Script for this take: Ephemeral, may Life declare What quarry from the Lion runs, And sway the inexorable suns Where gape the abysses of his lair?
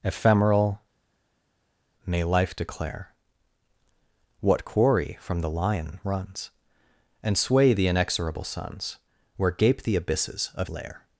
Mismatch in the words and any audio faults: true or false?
true